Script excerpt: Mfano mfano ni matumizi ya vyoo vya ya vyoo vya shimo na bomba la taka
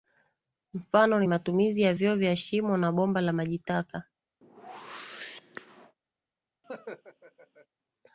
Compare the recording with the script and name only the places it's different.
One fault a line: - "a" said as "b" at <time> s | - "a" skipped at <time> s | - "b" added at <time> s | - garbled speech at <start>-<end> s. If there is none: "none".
- "mfano" skipped at 1.2 s
- "ya vyoo vya" skipped at 2.4 s
- "maji" added at 3.3 s